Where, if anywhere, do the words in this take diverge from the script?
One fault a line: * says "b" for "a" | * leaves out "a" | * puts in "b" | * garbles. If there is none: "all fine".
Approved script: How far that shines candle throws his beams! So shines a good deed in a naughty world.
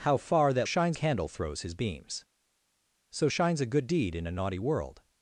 all fine